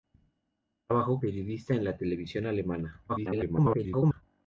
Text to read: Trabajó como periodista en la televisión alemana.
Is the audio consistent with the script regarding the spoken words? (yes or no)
no